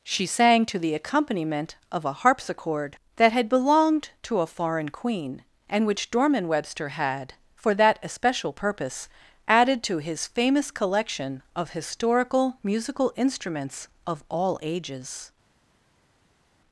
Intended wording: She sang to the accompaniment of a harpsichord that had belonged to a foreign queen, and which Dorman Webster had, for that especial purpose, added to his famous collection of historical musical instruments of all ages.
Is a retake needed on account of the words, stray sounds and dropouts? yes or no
no